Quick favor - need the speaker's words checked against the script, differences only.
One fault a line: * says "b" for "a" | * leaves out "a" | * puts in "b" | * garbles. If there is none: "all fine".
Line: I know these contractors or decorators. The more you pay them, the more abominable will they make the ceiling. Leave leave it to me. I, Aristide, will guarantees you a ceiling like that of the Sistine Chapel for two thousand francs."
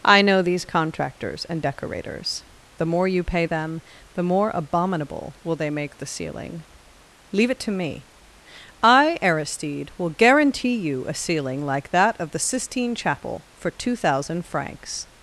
* says "and" for "or"
* leaves out "leave"
* says "guarantee" for "guarantees"